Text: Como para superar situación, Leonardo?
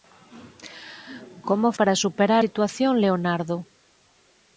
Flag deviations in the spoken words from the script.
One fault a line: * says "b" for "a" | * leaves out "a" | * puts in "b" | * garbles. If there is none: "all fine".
all fine